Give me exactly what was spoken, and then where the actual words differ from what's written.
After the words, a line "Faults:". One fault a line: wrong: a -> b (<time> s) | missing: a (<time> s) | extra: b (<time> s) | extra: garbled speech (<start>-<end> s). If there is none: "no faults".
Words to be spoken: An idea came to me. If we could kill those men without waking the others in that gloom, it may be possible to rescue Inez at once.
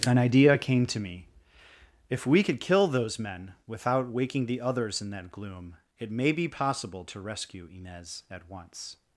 An idea came to me. If we could kill those men without waking the others in that gloom, it may be possible to rescue Inez at once.
Faults:
no faults